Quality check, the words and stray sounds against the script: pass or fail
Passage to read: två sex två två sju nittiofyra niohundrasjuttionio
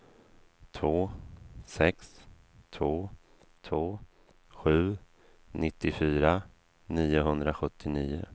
pass